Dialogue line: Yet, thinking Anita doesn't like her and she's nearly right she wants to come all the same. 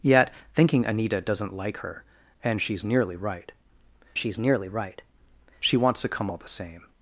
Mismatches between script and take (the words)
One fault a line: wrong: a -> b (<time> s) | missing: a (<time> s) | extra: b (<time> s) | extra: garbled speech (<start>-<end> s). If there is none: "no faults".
extra: she's nearly right (4.2 s)